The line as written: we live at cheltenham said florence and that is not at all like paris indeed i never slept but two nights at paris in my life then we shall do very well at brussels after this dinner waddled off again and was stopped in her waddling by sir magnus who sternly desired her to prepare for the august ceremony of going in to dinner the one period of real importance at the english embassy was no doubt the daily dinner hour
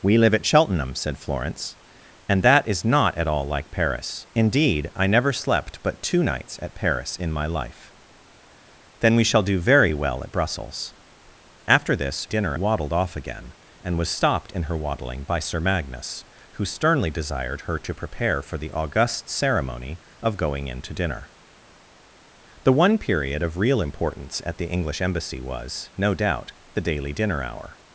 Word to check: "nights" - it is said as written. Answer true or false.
true